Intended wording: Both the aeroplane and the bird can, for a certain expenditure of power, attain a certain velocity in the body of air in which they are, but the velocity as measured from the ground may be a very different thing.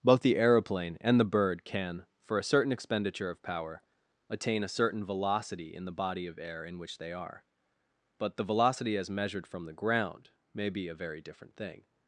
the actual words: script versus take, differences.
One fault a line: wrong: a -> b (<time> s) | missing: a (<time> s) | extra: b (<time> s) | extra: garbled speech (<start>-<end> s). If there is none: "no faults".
no faults